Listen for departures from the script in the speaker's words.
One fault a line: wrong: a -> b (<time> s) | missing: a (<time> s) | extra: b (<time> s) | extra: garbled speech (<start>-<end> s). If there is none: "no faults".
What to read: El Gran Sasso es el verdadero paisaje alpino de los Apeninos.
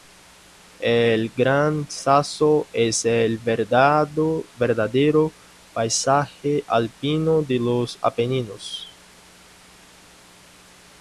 no faults